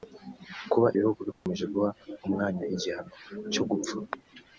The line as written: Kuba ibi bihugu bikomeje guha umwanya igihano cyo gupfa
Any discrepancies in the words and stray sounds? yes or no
yes